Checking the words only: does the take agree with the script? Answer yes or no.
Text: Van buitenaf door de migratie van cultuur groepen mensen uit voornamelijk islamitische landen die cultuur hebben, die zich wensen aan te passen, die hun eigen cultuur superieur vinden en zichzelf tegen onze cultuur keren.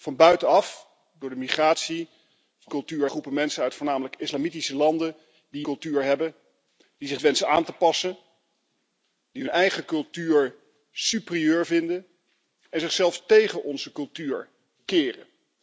yes